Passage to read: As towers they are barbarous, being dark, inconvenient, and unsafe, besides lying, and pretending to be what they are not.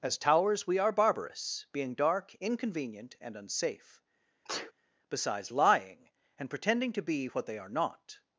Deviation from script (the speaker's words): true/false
true